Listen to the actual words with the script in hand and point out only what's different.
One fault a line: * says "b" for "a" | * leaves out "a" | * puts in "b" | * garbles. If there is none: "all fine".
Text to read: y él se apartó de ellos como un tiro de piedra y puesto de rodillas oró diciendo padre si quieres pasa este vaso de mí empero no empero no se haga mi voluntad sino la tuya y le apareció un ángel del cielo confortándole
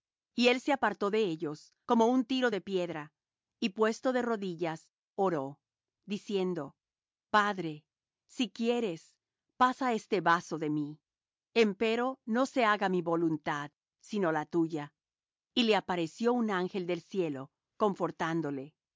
* leaves out "empero no"